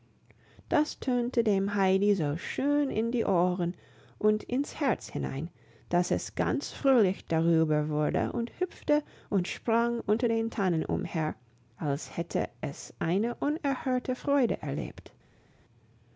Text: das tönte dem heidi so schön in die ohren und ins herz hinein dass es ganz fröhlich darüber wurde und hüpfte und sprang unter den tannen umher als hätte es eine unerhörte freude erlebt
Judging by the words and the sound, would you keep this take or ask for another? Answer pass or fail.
pass